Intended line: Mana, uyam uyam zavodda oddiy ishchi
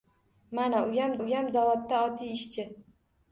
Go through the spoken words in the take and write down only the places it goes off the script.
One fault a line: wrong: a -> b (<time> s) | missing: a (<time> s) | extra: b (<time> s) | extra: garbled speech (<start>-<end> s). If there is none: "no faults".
no faults